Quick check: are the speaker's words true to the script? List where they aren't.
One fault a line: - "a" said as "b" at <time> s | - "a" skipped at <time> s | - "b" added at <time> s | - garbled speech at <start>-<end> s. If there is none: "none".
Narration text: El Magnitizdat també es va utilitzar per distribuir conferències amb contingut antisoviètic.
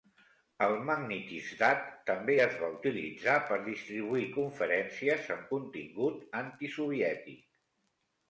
none